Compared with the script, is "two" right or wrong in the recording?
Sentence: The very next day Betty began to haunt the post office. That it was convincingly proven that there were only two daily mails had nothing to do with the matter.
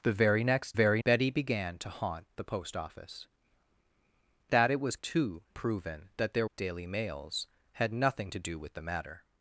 wrong